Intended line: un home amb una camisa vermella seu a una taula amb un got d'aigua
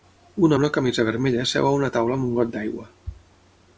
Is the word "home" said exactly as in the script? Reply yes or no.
no